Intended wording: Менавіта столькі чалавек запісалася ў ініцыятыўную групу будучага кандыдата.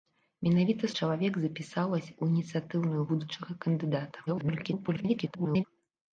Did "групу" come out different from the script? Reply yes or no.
yes